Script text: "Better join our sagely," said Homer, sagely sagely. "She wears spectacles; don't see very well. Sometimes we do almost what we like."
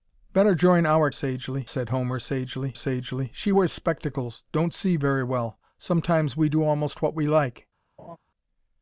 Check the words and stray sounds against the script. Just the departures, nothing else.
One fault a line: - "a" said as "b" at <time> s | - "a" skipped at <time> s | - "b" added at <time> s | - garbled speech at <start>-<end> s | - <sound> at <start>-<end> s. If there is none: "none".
- laugh at 8.0-8.2 s